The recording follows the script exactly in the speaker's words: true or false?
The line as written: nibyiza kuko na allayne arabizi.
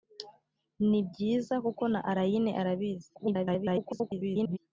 false